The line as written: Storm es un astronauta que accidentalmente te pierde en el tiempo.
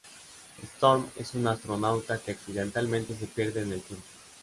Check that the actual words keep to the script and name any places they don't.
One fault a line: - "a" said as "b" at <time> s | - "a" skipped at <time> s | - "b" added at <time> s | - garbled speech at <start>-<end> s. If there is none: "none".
- "te" said as "se" at 3.1 s